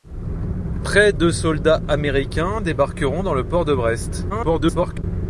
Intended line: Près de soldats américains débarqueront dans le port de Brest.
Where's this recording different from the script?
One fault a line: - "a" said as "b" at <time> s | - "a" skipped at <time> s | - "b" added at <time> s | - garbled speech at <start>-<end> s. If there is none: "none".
- garbled speech at 4.3-5.0 s